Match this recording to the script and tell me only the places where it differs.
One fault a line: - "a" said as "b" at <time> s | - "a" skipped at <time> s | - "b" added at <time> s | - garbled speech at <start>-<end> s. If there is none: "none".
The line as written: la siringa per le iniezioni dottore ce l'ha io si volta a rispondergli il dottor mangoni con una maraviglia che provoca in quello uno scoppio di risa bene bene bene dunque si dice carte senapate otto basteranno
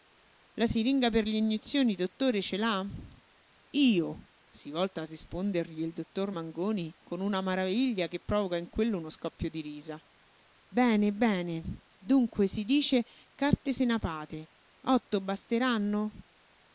- "bene" skipped at 11.8 s